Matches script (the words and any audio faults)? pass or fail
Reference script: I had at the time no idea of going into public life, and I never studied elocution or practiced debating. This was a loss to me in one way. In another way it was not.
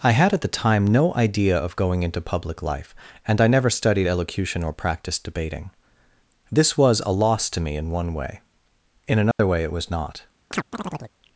fail